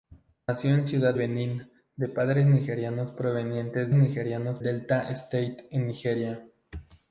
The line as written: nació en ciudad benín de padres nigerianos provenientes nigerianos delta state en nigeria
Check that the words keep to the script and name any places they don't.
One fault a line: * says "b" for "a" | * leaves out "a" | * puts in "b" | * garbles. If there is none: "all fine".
all fine